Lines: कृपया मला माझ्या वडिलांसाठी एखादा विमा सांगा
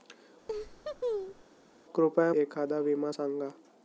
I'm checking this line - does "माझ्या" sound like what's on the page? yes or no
no